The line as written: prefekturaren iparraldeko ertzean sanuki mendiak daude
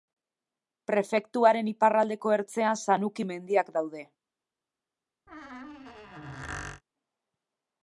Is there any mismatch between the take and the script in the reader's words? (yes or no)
no